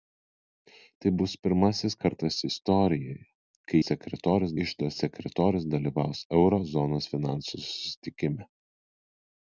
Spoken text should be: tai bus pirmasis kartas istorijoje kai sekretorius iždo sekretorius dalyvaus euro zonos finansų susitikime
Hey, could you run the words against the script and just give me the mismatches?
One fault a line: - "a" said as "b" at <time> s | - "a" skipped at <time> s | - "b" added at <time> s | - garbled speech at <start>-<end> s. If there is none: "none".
none